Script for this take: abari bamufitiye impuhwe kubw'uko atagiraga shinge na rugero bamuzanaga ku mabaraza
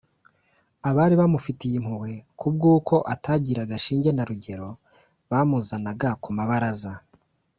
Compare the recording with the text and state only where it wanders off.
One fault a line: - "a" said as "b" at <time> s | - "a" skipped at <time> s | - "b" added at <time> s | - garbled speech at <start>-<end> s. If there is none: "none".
none